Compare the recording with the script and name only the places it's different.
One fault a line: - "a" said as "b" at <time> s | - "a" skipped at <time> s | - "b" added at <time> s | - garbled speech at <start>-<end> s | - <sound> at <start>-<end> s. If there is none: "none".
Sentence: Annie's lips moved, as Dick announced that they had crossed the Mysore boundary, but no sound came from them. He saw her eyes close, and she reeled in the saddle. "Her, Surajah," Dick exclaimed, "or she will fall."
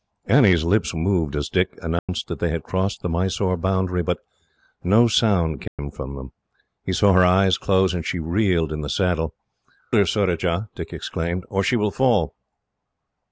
- dropout at 2.0-2.1 s
- dropout at 5.7-5.8 s